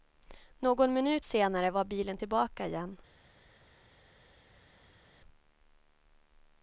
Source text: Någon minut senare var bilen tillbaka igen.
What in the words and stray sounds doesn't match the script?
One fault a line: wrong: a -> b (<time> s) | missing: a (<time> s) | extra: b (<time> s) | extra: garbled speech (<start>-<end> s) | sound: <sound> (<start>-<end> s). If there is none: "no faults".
no faults